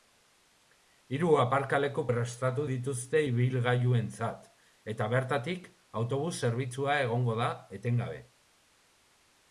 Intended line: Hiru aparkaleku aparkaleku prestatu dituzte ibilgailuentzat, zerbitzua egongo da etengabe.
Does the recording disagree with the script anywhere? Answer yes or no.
yes